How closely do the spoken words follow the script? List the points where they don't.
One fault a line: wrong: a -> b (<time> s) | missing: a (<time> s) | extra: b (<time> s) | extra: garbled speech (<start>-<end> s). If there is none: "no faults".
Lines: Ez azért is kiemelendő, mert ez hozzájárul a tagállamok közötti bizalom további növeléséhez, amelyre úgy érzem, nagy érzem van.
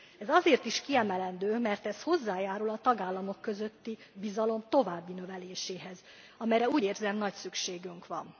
wrong: érzem -> szükségünk (7.3 s)